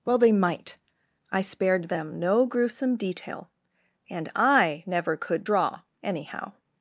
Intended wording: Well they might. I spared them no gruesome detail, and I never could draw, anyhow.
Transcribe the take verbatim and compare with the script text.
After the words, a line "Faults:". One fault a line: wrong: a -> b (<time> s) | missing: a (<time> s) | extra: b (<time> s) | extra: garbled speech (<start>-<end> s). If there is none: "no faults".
Well they might. I spared them no gruesome detail, and I never could draw, anyhow.
Faults:
no faults